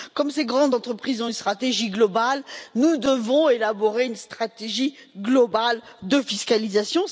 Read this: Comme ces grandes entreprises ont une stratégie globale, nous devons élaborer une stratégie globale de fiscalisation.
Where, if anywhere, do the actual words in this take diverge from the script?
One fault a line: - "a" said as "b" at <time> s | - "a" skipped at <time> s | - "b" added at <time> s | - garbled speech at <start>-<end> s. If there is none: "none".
none